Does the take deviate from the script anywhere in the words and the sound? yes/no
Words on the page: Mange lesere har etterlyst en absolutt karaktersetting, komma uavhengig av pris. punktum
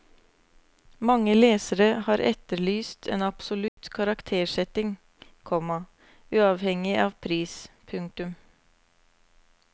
yes